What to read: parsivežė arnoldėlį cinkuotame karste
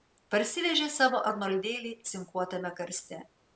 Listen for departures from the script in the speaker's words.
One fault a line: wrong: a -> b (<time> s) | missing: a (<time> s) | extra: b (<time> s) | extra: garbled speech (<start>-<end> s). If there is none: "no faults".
extra: savo (0.9 s)